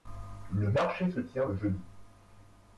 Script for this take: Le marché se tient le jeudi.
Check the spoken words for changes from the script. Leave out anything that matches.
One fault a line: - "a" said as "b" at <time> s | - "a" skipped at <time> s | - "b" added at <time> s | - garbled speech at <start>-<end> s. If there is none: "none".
none